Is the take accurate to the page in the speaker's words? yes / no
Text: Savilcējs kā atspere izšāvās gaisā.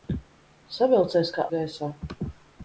no